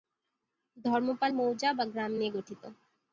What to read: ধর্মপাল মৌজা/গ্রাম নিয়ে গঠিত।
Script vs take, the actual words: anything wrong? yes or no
no